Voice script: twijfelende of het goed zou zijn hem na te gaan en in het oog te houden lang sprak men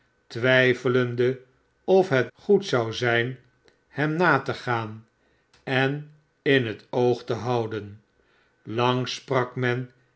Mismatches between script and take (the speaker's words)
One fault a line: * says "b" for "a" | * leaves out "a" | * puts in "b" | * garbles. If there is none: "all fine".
all fine